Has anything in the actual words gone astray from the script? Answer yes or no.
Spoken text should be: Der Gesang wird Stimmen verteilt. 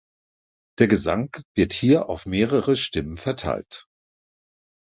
yes